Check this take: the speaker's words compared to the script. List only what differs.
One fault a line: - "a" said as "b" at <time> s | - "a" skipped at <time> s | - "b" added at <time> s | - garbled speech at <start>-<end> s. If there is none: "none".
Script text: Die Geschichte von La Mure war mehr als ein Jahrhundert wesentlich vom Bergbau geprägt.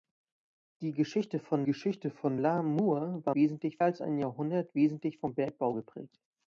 - "Geschichte von" added at 1.6 s
- "mehr" said as "wesentlich" at 3.3 s